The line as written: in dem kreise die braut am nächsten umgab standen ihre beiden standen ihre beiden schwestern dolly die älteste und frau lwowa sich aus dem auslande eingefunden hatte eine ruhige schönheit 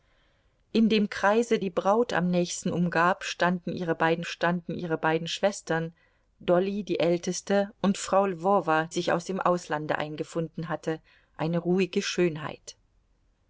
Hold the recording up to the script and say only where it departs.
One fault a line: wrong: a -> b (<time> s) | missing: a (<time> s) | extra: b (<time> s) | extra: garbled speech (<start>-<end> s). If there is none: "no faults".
no faults